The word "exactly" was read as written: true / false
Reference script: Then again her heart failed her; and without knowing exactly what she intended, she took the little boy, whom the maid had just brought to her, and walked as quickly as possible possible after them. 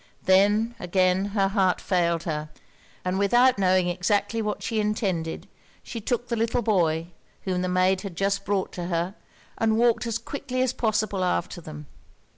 true